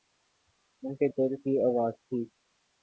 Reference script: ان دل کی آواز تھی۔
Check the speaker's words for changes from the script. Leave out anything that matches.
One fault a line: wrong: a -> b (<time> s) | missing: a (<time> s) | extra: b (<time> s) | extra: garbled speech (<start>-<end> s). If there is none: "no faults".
extra: کے (0.9 s)